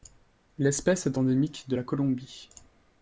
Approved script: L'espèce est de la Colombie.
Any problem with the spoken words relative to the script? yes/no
yes